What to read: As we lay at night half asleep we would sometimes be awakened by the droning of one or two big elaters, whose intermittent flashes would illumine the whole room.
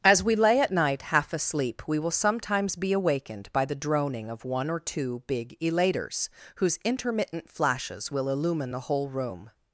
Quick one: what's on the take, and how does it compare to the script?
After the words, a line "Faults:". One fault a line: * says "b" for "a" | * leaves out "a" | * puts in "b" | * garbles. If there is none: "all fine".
As we lay at night half asleep we will sometimes be awakened by the droning of one or two big elaters, whose intermittent flashes will illumine the whole room.
Faults:
* says "will" for "would"
* says "will" for "would"